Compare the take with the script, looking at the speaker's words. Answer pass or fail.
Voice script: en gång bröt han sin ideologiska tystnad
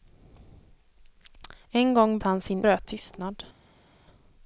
fail